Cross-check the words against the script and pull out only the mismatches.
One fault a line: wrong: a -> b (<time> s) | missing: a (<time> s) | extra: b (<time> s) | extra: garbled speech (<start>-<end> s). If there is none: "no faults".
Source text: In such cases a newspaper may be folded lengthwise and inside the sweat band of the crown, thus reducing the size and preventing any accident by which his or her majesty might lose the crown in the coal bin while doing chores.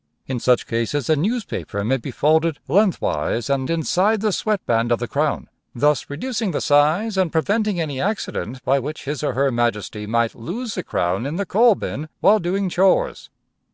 no faults